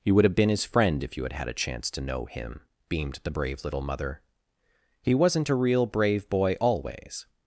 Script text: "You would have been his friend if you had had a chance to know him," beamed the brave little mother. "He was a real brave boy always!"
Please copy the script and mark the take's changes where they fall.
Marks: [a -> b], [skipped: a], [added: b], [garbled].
"You would have been his friend if you had had a chance to know him," beamed the brave little mother. "He [was -> wasn't] a real brave boy always!"